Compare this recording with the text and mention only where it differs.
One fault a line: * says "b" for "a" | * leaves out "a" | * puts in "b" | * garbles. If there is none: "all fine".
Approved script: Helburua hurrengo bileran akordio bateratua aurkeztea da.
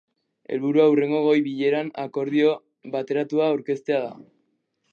* puts in "goi"